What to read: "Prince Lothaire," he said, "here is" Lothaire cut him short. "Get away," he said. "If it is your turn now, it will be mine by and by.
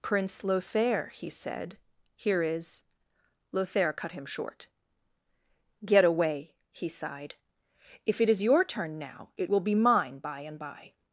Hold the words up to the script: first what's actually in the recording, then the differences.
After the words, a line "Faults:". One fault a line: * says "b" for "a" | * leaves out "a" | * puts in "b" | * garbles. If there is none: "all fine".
"Prince Lothaire," he said, "here is" Lothaire cut him short. "Get away," he sighed. "If it is your turn now, it will be mine by and by.
Faults:
* says "sighed" for "said"